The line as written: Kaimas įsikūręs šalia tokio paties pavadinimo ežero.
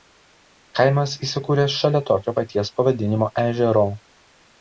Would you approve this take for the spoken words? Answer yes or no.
yes